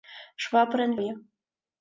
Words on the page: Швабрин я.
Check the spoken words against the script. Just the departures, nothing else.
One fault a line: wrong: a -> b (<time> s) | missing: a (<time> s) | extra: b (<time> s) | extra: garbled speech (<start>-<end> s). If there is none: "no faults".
no faults